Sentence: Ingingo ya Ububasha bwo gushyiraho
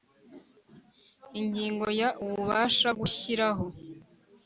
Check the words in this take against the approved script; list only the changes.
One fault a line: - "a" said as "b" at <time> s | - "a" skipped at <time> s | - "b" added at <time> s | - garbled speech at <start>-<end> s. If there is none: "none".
- "bwo" skipped at 2.9 s